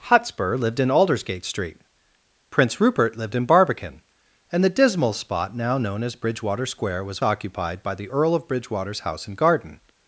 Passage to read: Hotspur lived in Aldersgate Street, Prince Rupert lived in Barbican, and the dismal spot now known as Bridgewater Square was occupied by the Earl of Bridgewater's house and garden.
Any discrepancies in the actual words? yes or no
no